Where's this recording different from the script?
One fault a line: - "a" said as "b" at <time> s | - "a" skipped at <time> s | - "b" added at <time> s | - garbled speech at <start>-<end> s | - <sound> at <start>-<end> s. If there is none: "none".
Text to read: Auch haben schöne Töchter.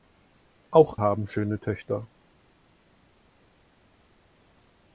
none